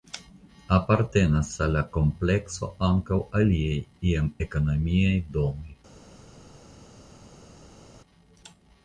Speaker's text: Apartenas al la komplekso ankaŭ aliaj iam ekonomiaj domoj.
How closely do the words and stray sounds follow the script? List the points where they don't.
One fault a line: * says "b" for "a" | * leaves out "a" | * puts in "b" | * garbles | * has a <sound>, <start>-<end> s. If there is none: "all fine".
all fine